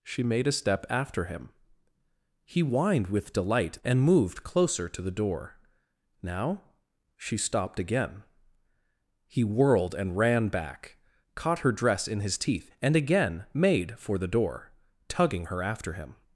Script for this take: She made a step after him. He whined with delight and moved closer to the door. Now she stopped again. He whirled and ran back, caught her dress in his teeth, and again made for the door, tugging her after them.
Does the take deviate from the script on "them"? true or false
true